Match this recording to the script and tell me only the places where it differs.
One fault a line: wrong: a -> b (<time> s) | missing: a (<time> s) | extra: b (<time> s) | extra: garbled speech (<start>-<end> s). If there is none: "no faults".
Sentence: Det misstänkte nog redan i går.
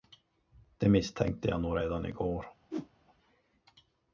extra: jag (1.5 s)